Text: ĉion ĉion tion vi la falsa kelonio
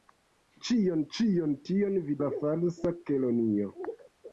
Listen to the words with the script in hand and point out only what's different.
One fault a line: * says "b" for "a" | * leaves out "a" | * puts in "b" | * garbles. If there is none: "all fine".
all fine